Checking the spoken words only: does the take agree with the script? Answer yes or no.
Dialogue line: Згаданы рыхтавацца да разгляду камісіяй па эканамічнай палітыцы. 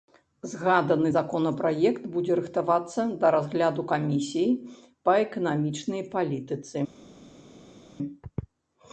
no